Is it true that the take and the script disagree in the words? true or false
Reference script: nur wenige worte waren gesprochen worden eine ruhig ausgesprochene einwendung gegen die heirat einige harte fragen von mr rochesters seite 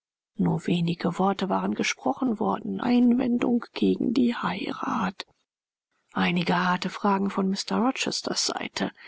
true